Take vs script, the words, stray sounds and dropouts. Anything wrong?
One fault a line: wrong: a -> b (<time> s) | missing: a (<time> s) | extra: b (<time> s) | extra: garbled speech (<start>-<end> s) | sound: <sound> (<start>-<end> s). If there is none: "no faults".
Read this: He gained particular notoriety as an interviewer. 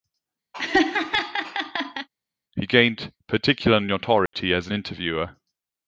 sound: laugh (0.5-2.1 s)
sound: dropout (4.3-4.3 s)